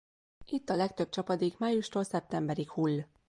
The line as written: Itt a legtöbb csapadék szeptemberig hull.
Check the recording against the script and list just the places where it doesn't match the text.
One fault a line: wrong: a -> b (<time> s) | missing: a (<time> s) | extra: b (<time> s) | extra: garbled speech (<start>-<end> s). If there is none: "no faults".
extra: májustól (1.6 s)